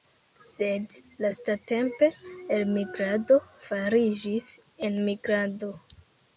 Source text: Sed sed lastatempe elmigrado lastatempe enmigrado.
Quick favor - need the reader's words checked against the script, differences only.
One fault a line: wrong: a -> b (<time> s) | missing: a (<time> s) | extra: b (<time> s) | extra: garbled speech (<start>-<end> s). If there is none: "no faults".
missing: sed (0.9 s)
wrong: lastatempe -> fariĝis (3.7 s)